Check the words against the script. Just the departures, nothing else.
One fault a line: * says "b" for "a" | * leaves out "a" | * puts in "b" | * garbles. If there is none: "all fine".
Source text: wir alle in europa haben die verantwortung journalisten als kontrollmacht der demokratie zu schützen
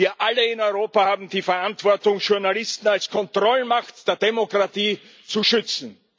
all fine